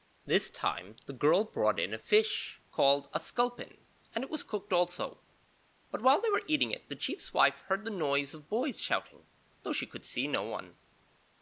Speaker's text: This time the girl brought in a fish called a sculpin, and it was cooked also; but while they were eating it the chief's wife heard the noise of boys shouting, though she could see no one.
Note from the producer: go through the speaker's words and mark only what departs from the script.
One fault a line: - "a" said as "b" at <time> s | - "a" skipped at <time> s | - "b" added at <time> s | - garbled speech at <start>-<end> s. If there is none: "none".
none